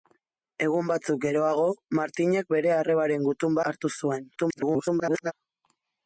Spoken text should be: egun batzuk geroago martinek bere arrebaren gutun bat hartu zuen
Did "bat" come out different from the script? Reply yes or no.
yes